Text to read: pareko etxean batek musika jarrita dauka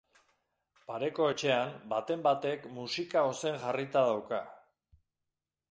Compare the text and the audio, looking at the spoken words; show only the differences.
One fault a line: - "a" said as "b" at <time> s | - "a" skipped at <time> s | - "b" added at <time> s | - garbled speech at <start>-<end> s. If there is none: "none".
- "baten" added at 2.0 s
- "ozen" added at 3.3 s